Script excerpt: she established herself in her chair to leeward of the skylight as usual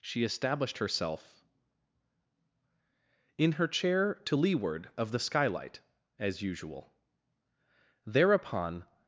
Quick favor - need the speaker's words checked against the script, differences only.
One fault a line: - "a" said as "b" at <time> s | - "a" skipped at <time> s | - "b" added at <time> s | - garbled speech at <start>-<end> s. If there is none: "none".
- "thereupon" added at 8.0 s